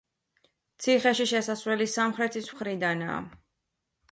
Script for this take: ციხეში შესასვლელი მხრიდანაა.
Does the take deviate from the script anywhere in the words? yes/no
yes